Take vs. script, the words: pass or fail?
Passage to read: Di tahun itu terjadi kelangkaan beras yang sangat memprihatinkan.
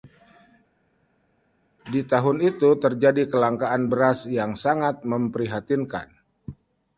pass